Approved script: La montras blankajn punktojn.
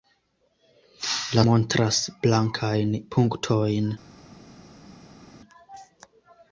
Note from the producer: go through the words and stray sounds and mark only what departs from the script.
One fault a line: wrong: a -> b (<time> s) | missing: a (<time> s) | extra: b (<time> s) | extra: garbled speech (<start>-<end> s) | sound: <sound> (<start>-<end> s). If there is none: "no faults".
no faults